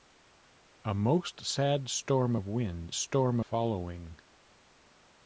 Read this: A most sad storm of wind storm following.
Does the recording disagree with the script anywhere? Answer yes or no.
no